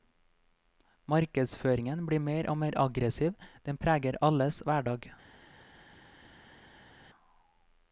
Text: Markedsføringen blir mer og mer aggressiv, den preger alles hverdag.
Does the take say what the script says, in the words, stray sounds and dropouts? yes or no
yes